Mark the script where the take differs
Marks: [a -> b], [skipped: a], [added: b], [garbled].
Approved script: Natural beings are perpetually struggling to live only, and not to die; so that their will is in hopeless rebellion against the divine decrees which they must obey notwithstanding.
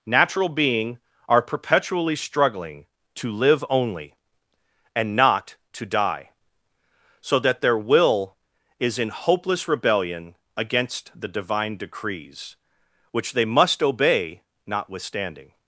Natural [beings -> being] are perpetually struggling to live only, and not to die; so that their will is in hopeless rebellion against the divine decrees which they must obey notwithstanding.